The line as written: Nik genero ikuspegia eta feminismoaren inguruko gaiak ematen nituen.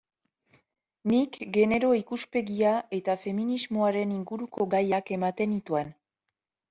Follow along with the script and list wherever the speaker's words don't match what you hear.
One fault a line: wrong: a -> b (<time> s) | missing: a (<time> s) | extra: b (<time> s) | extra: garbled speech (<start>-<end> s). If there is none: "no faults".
no faults